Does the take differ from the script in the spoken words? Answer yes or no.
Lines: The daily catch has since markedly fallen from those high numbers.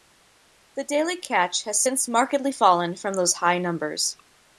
no